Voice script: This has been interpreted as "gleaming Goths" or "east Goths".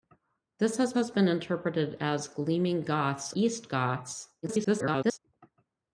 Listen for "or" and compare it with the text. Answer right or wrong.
wrong